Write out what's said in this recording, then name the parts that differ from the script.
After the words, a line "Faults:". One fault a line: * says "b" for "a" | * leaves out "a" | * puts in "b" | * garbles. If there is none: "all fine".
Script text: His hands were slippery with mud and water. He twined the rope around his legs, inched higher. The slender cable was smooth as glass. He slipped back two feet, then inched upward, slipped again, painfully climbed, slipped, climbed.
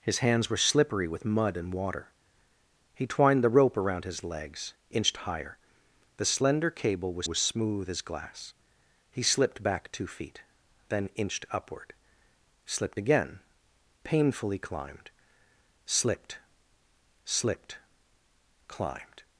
His hands were slippery with mud and water. He twined the rope around his legs, inched higher. The slender cable was was smooth as glass. He slipped back two feet, then inched upward, slipped again, painfully climbed, slipped slipped, climbed.
Faults:
* puts in "was"
* puts in "slipped"